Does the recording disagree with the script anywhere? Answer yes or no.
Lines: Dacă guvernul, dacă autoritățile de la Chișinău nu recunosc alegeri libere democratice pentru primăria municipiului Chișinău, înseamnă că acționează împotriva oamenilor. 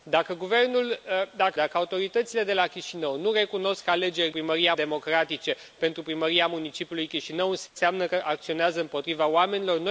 yes